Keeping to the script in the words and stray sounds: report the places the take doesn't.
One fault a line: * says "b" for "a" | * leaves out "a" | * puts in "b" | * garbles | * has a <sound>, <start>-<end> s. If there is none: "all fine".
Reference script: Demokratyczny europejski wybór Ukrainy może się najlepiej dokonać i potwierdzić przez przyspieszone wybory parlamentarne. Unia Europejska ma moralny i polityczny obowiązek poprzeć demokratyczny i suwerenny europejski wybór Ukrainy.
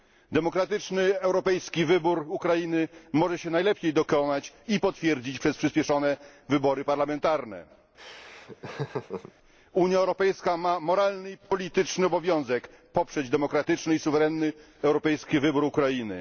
* has a laugh, 8.0-9.3 s